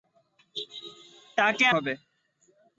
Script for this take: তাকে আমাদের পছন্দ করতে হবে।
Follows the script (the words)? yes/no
no